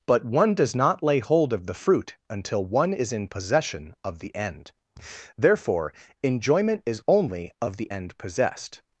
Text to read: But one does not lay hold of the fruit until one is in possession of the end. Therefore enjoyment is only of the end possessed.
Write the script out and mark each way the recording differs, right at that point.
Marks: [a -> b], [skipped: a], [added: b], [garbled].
But one does not lay hold of the fruit until one is in possession of the end. Therefore enjoyment is only of the end possessed.